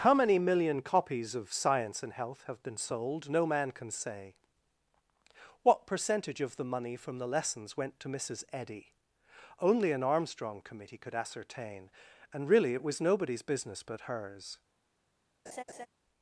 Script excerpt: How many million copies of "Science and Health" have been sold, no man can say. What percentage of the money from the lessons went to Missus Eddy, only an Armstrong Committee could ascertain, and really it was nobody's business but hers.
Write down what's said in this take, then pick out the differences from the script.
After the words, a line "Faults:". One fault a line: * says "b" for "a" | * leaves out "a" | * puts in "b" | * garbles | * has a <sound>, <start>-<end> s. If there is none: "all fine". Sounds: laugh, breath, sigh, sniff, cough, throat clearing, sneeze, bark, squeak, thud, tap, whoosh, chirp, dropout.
How many million copies of "Science and Health" have been sold, no man can say. What percentage of the money from the lessons went to Missus Eddy, only an Armstrong Committee could ascertain, and really it was nobody's business but hers.
Faults:
* has a laugh, 15.5-15.9 s